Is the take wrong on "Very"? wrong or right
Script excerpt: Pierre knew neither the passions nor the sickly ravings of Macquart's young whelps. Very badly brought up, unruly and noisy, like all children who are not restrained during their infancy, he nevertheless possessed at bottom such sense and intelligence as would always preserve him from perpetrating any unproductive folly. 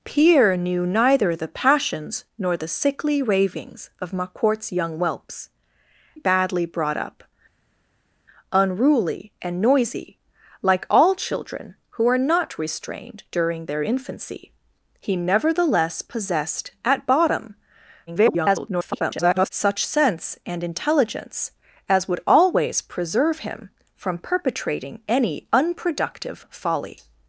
wrong